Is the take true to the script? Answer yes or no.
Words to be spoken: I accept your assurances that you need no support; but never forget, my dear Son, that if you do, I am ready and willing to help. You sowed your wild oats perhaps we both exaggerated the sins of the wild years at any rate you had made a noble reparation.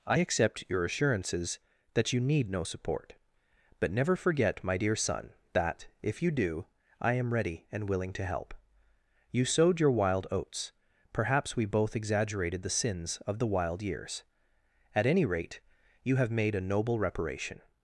no